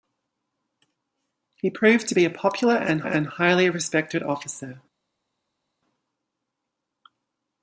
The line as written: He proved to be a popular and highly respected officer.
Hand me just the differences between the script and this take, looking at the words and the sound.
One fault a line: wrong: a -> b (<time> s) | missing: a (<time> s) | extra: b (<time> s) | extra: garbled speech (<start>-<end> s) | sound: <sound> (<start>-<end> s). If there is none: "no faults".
extra: and (3.0 s)